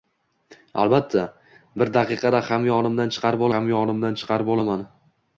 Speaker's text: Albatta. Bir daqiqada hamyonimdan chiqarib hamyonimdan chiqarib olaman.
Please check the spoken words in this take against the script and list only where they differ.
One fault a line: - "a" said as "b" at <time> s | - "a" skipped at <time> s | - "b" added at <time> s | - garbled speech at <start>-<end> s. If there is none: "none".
none